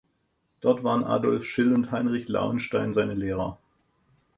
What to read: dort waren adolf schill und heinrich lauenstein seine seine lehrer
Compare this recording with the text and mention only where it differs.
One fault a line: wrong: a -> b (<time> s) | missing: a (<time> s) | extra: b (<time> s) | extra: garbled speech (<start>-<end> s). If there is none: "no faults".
missing: seine (3.1 s)